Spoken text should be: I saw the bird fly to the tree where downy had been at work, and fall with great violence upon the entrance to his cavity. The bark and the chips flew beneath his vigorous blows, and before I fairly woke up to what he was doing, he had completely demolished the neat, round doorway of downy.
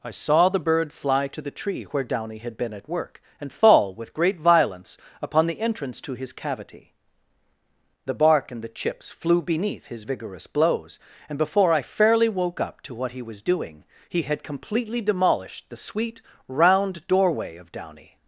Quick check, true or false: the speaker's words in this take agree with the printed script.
false